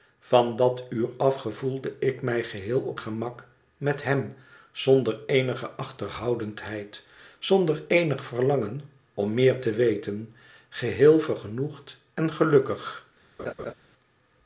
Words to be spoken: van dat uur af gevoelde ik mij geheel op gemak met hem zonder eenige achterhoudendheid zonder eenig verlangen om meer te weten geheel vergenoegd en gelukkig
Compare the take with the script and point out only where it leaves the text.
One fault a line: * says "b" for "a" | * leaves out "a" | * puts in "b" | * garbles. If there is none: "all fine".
all fine